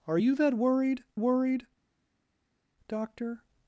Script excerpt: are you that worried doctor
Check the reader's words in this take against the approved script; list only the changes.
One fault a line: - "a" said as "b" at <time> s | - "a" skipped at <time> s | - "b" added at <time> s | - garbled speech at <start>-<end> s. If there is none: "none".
- "worried" added at 1.2 s